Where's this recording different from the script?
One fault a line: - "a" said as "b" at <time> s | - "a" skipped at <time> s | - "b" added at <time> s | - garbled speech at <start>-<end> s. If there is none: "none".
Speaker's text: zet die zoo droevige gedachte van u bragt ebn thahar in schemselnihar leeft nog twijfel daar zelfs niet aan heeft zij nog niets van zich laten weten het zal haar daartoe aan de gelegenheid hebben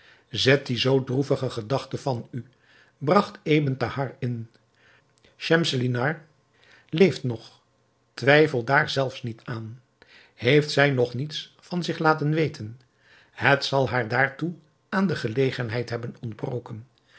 none